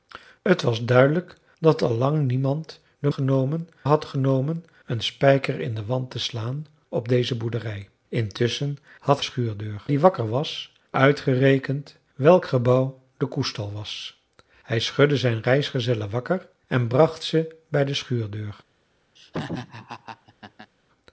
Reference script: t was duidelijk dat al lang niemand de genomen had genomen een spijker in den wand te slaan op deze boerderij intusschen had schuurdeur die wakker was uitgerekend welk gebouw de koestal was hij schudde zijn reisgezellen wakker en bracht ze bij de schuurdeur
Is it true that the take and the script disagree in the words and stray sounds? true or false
true